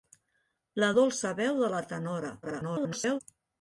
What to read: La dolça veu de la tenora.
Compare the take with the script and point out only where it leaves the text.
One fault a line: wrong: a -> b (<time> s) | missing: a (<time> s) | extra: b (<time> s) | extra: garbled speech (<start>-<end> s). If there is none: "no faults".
extra: garbled speech (2.4-3.2 s)